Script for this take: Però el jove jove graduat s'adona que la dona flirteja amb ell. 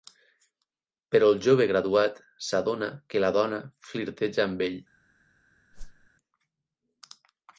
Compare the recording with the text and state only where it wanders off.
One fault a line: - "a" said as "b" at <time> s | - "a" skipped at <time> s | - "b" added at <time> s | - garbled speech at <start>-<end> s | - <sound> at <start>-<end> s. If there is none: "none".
- "jove" skipped at 1.7 s
- whoosh at 5.7-6.1 s